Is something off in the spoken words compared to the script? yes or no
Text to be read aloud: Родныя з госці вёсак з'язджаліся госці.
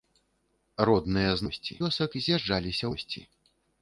no